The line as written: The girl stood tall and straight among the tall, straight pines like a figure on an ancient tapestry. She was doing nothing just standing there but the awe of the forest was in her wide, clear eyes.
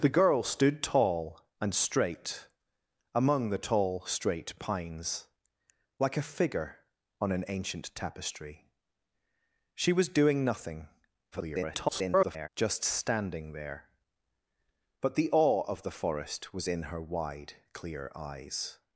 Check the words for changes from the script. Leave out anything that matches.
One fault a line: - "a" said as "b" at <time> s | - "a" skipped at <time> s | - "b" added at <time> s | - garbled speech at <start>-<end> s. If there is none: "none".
- garbled speech at 11.3-12.5 s